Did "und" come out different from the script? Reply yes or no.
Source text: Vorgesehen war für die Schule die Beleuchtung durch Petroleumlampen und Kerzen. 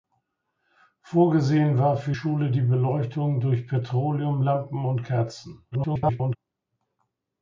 no